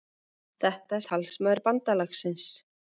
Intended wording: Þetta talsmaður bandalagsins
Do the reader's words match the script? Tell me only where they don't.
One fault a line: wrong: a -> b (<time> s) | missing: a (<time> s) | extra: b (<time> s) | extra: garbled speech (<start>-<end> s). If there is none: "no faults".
no faults